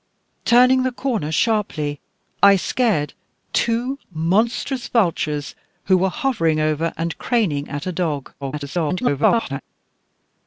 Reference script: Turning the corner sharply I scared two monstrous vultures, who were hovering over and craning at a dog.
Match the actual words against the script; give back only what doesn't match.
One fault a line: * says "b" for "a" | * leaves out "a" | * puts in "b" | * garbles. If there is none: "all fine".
* garbles